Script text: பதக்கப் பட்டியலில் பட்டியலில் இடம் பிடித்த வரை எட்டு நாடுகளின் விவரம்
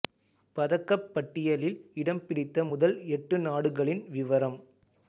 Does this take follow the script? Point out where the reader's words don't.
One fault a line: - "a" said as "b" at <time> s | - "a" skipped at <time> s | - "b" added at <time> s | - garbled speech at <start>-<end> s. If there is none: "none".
- "பட்டியலில்" skipped at 1.8 s
- "வரை" said as "முதல்" at 2.7 s